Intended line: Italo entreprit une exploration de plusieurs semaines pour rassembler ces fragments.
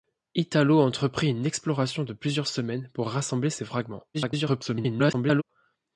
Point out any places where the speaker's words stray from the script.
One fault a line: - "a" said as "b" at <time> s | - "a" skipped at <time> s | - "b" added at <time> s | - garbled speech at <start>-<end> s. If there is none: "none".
- garbled speech at 4.1-5.4 s